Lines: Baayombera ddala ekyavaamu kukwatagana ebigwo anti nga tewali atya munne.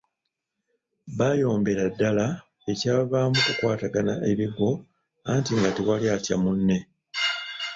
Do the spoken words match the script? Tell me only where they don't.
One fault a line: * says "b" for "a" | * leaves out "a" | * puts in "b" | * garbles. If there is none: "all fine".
all fine